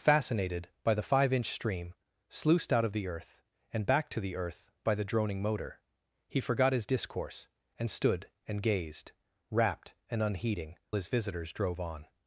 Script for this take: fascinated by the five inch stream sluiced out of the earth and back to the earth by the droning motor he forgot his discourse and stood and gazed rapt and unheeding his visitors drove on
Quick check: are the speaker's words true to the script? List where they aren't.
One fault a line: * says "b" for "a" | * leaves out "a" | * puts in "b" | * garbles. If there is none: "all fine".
all fine